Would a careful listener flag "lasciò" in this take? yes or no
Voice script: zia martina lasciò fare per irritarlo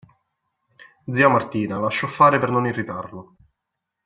no